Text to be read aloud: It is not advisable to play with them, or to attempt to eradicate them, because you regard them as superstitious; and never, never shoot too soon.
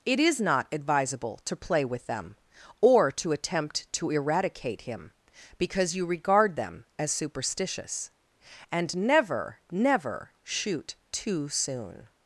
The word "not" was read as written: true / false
true